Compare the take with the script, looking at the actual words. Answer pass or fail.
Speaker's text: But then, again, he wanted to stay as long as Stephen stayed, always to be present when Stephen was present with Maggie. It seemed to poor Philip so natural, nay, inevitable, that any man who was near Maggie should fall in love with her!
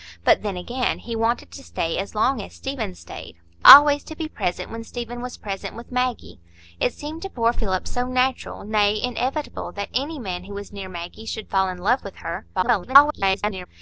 fail